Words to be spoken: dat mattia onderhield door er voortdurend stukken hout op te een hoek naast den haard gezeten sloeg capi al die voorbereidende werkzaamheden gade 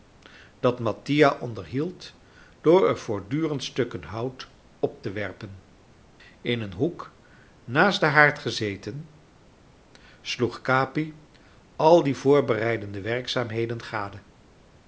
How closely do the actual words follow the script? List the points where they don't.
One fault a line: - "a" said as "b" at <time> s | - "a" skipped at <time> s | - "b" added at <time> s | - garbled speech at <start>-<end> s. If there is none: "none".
- "werpen in" added at 5.1 s